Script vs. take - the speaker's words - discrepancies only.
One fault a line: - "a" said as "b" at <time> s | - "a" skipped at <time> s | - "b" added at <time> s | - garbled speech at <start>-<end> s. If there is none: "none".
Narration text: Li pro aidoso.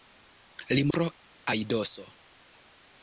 none